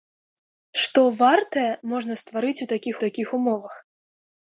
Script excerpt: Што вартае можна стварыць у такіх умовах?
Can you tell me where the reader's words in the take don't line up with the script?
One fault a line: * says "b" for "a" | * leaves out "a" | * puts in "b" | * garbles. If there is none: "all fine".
* puts in "такіх"